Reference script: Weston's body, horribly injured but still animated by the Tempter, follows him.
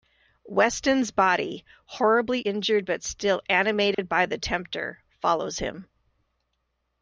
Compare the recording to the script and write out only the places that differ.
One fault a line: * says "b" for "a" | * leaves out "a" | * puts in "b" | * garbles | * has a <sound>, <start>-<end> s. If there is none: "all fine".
* has a dropout, 3.9-4.0 s